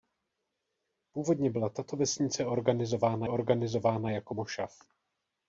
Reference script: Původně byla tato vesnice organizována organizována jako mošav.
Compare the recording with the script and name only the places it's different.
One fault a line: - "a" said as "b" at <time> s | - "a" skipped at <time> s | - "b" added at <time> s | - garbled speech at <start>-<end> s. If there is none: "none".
none